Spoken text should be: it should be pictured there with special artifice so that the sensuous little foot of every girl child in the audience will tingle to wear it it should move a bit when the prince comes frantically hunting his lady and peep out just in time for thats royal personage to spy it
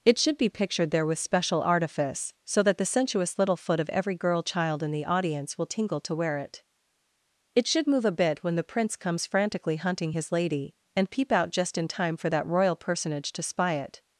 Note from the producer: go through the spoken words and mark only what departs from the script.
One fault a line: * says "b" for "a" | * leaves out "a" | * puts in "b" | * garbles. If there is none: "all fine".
* says "that" for "thats"